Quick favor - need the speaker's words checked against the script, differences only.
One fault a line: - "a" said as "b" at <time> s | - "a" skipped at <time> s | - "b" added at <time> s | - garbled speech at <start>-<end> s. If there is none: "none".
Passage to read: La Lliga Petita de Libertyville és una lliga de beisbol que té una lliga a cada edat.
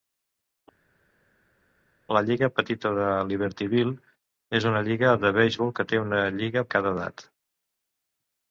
none